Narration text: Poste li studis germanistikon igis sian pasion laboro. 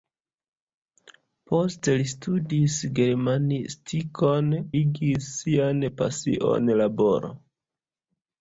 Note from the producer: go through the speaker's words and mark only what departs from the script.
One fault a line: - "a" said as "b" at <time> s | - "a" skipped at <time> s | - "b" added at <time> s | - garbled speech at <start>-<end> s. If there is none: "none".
none